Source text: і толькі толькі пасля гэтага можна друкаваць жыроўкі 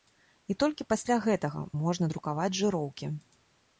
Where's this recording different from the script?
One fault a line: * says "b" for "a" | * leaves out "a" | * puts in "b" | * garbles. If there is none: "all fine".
* leaves out "толькі"